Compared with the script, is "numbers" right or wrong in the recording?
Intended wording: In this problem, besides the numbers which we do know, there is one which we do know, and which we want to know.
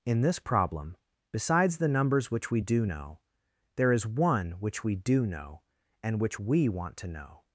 right